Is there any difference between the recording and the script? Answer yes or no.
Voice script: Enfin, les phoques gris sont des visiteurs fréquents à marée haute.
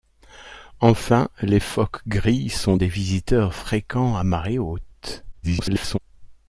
yes